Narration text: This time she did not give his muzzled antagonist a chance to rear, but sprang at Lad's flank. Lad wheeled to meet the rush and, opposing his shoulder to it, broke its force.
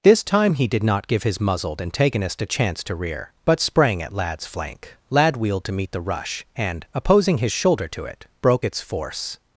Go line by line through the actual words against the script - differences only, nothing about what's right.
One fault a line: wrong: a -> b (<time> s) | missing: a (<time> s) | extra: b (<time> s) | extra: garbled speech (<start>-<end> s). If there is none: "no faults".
wrong: she -> he (0.6 s)